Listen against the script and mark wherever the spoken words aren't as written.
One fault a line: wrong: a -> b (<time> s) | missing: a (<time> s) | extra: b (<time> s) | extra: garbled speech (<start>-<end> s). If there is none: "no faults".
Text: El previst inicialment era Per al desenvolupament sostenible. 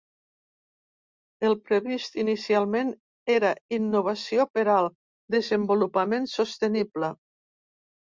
extra: Innovació (3.8 s)